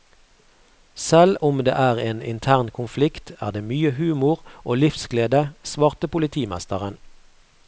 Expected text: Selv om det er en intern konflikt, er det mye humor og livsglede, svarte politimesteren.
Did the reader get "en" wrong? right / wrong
right